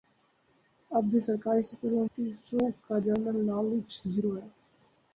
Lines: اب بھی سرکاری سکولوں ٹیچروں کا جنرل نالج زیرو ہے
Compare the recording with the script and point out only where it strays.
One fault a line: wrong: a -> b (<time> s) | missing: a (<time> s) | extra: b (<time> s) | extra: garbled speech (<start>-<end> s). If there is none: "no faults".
no faults